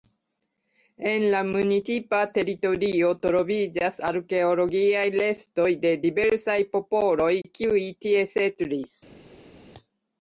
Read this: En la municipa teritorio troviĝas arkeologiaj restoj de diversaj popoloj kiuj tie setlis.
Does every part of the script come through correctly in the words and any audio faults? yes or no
yes